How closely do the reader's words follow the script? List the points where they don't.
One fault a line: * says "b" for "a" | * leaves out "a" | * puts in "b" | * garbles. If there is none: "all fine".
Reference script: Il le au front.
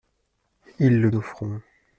all fine